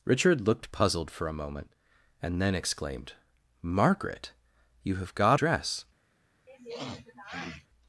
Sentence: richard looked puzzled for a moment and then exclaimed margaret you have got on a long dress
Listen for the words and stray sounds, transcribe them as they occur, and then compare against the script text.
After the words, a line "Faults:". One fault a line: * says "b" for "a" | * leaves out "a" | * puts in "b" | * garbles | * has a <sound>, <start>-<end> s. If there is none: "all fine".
richard looked puzzled for a moment and then exclaimed margaret you have got dress
Faults:
* leaves out "on a long"
* has a sniff, 6.5-7.7 s